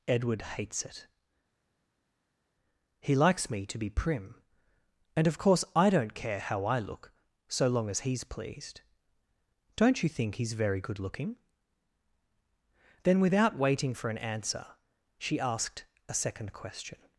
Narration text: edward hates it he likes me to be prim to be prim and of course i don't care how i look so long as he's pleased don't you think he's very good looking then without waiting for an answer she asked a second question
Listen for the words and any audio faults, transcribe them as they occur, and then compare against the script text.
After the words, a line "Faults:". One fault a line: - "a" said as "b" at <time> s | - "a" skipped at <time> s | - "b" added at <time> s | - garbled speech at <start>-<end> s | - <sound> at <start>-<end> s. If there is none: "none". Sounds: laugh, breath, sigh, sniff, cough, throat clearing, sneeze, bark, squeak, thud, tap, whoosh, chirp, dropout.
edward hates it he likes me to be prim and of course i don't care how i look so long as he's pleased don't you think he's very good looking then without waiting for an answer she asked a second question
Faults:
- "to be prim" skipped at 4.4 s